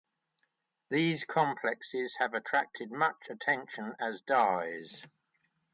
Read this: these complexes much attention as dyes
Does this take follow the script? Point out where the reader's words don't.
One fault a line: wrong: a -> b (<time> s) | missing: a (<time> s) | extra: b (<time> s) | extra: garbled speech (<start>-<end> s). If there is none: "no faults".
extra: have attracted (2.2 s)